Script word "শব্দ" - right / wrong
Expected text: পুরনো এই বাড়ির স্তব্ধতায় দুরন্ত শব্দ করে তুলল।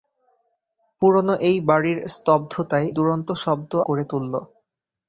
right